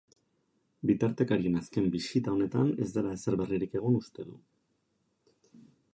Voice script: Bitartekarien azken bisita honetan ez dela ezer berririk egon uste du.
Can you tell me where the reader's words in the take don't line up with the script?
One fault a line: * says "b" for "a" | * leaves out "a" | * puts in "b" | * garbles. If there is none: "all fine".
all fine